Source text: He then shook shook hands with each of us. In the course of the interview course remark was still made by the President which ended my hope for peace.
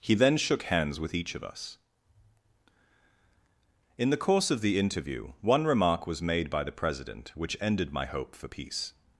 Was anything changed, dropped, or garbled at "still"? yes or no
yes